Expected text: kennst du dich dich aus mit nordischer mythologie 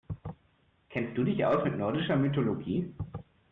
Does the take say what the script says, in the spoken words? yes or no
no